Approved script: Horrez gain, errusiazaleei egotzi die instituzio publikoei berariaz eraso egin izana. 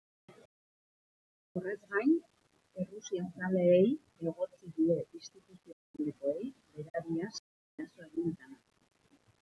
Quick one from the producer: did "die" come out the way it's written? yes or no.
yes